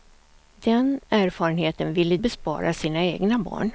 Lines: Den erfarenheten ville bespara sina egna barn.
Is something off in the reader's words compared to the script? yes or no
no